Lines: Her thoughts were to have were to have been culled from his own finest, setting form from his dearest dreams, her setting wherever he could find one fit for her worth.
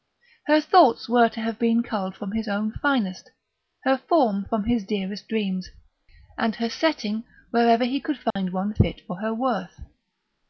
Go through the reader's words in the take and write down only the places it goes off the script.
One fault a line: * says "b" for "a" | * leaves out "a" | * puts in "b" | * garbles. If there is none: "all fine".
* leaves out "were to have"
* says "her" for "setting"
* puts in "and"